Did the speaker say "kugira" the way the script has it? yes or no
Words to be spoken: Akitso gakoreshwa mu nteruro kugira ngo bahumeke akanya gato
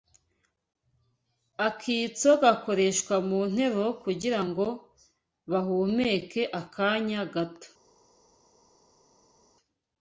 yes